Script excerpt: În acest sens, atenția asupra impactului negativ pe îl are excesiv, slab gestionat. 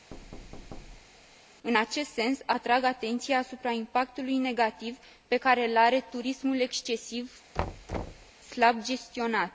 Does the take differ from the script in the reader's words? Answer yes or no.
yes